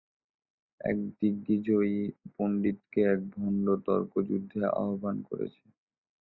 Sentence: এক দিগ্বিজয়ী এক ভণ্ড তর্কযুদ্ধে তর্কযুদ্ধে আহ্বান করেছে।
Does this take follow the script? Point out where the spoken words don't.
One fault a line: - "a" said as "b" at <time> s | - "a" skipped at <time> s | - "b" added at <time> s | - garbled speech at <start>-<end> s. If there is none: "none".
- "পণ্ডিতকে" added at 2.4 s
- "তর্কযুদ্ধে" skipped at 4.6 s